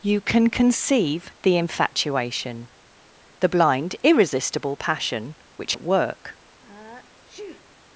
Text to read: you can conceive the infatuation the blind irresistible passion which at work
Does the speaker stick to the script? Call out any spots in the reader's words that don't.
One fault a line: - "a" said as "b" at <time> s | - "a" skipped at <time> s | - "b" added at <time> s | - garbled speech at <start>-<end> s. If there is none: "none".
none